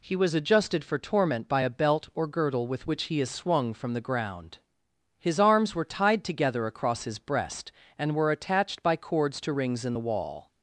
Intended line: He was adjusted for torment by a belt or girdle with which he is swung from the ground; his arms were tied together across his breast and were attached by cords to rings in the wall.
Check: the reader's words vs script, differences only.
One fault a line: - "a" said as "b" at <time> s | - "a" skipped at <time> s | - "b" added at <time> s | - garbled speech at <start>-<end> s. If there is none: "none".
none